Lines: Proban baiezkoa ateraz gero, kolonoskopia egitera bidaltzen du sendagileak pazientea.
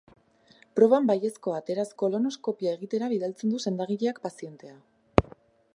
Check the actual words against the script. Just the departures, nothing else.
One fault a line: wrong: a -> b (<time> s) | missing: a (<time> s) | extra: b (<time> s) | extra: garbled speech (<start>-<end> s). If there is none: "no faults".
missing: gero (1.9 s)